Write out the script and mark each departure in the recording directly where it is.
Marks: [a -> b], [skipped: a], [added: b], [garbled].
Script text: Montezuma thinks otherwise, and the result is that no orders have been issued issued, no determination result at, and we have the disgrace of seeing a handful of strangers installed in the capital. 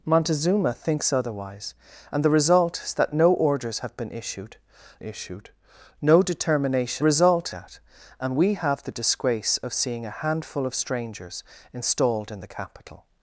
Montezuma thinks otherwise, and the result is that no orders have been issued issued, no determination result at, and we have the disgrace of seeing a handful of strangers installed in the capital.